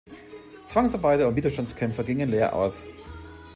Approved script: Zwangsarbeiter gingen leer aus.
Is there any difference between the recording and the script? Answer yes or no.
yes